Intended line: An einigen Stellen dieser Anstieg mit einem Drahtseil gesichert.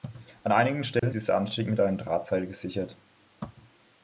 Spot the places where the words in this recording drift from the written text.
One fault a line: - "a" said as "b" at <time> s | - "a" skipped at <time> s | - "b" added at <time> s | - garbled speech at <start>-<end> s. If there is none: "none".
none